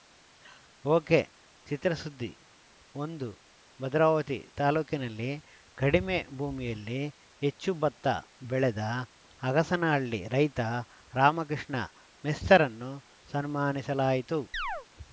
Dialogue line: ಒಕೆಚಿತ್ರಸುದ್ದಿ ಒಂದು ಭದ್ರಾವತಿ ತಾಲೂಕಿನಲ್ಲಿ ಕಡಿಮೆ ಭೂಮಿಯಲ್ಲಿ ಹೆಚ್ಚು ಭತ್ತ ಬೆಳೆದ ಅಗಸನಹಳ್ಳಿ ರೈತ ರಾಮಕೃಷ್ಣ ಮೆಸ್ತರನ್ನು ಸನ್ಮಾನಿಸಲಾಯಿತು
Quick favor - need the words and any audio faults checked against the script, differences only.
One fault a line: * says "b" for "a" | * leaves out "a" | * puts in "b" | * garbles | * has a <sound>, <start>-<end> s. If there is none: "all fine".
* has a chirp, 14.5-14.9 s